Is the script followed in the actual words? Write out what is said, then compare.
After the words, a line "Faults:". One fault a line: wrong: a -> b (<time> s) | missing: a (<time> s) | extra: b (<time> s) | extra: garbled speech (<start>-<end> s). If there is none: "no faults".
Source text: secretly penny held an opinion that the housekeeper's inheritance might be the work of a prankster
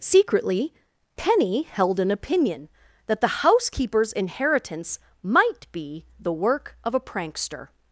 secretly penny held an opinion that the housekeeper's inheritance might be the work of a prankster
Faults:
no faults